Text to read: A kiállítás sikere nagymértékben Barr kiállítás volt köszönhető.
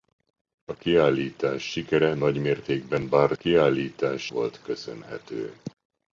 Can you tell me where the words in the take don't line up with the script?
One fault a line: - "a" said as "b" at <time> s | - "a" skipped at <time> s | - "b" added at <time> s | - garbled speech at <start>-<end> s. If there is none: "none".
none